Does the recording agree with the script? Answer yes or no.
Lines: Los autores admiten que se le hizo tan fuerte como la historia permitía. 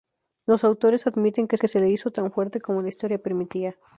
no